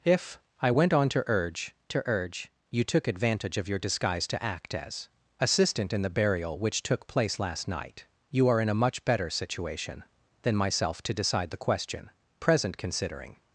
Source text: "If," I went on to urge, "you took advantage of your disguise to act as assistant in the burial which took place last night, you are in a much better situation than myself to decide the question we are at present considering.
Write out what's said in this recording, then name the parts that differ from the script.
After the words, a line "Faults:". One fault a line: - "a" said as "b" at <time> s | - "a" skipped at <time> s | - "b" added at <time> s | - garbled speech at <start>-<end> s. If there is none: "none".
"If," I went on to urge to urge, "you took advantage of your disguise to act as assistant in the burial which took place last night, you are in a much better situation than myself to decide the question present considering.
Faults:
- "to urge" added at 1.9 s
- "we are at" skipped at 12.1 s